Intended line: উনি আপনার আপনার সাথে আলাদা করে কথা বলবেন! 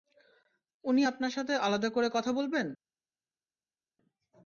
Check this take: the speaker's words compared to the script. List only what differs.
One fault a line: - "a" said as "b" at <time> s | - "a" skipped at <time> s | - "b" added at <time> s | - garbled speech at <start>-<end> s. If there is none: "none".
- "আপনার" skipped at 1.3 s